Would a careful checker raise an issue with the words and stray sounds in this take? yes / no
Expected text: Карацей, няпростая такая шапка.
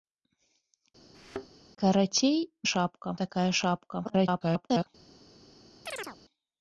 yes